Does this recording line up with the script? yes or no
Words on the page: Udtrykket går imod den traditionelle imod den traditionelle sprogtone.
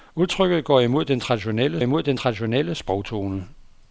yes